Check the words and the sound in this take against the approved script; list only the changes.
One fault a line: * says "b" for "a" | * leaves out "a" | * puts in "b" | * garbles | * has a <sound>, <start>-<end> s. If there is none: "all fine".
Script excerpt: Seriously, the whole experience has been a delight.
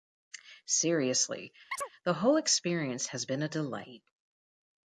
* has a chirp, 1.7-1.9 s